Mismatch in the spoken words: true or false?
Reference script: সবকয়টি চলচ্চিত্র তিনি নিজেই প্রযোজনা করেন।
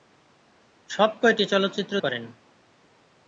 true